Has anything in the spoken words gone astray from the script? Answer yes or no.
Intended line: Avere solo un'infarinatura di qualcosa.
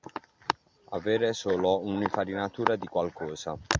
no